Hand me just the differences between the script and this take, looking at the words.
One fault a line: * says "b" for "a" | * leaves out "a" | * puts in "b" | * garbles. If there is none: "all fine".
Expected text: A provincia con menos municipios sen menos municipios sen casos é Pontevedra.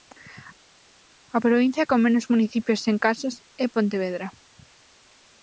* leaves out "menos municipios sen"